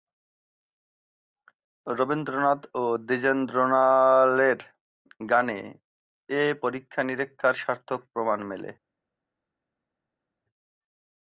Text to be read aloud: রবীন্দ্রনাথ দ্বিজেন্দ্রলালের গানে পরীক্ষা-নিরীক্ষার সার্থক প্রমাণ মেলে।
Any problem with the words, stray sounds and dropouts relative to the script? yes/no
yes